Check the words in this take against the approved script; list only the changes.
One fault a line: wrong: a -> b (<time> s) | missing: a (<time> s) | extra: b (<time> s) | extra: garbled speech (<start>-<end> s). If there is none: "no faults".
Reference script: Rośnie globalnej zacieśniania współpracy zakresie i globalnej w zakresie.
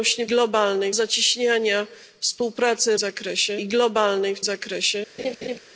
no faults